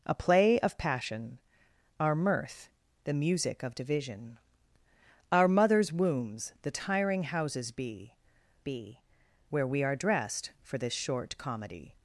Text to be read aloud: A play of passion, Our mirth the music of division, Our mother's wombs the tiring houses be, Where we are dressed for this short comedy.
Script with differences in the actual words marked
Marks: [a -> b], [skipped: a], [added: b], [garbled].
A play of passion, Our mirth the music of division, Our mother's wombs the tiring houses be, [added: be] Where we are dressed for this short comedy.